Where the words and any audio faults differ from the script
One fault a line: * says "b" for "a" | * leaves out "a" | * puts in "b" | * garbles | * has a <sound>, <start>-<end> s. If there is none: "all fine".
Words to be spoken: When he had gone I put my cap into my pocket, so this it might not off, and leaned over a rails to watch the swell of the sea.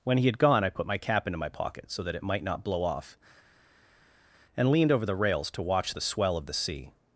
* says "that" for "this"
* puts in "blow"
* says "the" for "a"